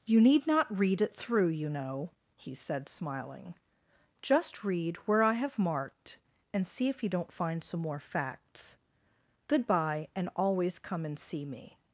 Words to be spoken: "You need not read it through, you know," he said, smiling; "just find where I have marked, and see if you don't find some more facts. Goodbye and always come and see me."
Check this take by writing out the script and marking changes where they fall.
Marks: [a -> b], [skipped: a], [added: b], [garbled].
"You need not read it through, you know," he said, smiling; "just [find -> read] where I have marked, and see if you don't find some more facts. Goodbye and always come and see me."